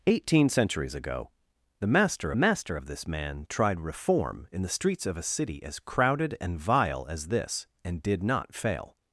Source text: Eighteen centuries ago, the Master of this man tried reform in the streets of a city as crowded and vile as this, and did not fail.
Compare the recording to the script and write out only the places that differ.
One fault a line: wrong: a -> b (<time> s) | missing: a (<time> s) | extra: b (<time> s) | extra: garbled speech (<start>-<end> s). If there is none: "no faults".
extra: Master (2.3 s)